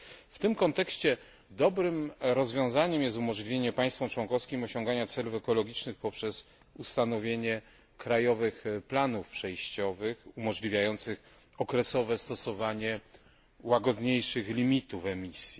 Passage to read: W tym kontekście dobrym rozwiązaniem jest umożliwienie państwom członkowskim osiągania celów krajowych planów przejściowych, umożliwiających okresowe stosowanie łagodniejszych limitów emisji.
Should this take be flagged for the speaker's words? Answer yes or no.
yes